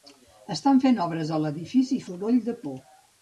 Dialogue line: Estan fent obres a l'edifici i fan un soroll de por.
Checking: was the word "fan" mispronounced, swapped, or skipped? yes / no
yes